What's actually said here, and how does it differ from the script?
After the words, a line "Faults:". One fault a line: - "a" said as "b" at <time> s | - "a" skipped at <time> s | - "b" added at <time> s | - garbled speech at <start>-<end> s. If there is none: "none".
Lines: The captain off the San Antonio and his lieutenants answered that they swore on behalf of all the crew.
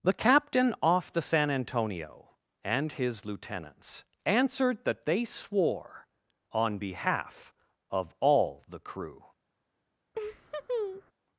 The captain off the San Antonio and his lieutenants answered that they swore on behalf of all the crew.
Faults:
none